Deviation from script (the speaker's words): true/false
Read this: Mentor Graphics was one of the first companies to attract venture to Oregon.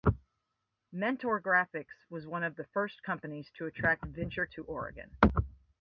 false